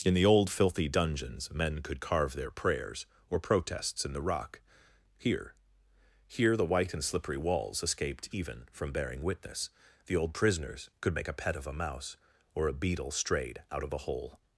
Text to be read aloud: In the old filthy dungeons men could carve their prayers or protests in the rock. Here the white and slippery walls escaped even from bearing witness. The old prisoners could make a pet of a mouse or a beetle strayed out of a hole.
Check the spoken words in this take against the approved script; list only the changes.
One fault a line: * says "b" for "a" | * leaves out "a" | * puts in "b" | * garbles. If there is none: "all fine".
* puts in "Here"